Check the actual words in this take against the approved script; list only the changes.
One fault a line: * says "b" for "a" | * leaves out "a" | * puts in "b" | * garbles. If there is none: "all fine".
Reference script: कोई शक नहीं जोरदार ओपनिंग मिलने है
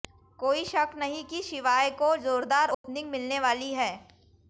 * puts in "कि शिवाय को"
* puts in "वाली"